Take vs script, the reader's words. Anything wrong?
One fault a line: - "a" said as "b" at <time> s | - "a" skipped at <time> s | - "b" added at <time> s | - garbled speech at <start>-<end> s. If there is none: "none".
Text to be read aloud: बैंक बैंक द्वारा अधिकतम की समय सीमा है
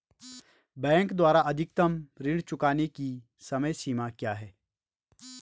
- "बैंक" skipped at 1.1 s
- "ऋण चुकाने" added at 2.2 s
- "क्या" added at 4.1 s